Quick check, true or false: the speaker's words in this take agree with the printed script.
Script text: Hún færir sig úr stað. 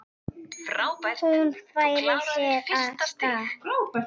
true